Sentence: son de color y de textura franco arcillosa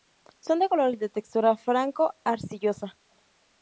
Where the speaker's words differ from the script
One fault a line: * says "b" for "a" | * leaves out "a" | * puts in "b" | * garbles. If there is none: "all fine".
all fine